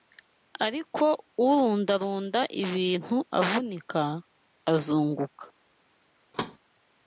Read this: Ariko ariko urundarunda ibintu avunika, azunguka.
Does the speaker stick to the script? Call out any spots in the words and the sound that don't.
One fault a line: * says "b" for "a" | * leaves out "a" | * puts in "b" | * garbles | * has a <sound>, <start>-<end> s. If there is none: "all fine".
* leaves out "ariko"
* has a thud, 6.3-6.6 s